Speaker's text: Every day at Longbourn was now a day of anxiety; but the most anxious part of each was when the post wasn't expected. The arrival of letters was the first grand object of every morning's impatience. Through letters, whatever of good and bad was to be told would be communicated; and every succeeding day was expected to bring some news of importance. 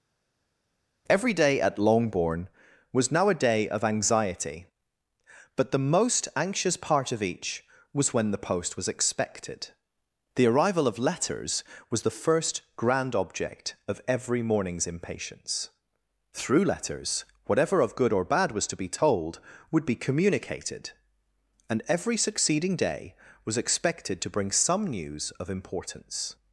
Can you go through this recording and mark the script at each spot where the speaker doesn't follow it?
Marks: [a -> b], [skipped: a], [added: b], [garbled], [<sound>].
Every day at Longbourn was now a day of anxiety; but the most anxious part of each was when the post [wasn't -> was] expected. The arrival of letters was the first grand object of every morning's impatience. Through letters, whatever of good [and -> or] bad was to be told would be communicated; and every succeeding day was expected to bring some news of importance.